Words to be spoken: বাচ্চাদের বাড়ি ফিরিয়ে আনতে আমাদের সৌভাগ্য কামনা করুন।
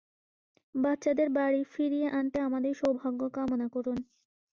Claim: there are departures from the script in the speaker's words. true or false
false